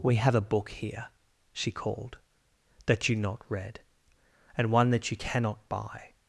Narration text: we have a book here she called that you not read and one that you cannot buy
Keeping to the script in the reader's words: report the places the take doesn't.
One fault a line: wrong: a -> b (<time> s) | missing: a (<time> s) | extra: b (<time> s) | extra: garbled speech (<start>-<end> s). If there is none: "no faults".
no faults